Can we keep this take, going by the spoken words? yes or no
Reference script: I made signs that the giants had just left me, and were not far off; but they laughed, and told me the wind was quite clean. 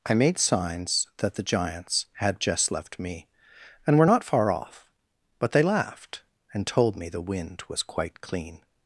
yes